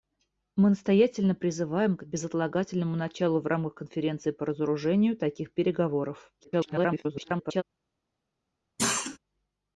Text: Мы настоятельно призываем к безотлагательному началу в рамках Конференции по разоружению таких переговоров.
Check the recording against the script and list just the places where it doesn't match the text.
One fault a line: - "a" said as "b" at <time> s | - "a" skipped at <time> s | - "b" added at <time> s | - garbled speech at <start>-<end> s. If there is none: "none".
- garbled speech at 6.4-7.6 s